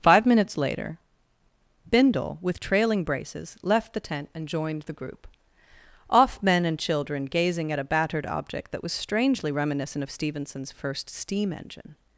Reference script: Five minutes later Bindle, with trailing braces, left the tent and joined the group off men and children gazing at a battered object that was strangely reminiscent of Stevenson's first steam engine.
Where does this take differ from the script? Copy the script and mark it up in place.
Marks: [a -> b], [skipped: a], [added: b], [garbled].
Five minutes later Bindle, with trailing braces, left the tent and joined the group off men and children gazing at a battered object that was strangely reminiscent of Stevenson's first steam engine.